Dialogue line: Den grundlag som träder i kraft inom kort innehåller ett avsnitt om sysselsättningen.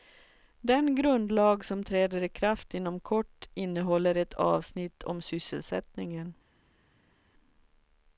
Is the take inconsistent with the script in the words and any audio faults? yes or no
no